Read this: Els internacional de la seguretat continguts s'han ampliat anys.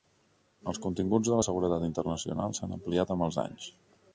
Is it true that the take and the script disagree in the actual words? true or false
true